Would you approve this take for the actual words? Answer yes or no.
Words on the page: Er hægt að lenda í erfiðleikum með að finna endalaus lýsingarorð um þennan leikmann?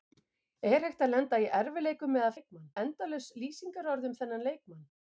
no